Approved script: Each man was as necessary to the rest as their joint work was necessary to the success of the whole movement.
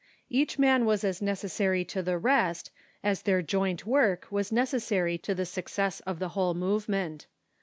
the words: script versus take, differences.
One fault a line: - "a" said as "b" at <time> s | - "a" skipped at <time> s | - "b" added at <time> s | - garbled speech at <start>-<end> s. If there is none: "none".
none